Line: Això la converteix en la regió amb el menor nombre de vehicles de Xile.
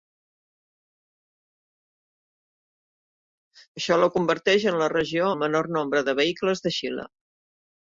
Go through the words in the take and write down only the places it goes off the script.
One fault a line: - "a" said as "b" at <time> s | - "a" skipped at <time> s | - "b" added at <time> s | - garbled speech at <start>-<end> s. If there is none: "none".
- "amb" skipped at 5.3 s